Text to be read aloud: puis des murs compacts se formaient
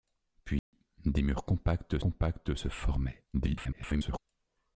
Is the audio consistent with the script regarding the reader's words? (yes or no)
no